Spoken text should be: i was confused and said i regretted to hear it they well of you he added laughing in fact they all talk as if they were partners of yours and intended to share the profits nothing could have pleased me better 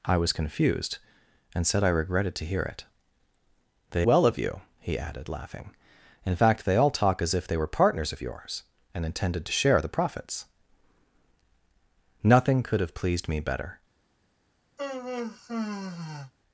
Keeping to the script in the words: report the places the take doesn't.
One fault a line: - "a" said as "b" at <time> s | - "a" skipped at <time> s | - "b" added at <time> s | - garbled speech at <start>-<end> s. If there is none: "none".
none